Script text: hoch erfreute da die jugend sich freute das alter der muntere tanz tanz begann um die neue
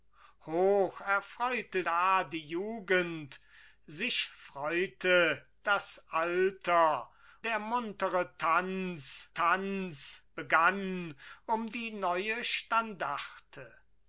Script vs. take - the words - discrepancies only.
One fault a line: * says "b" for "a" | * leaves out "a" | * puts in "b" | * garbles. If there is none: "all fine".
all fine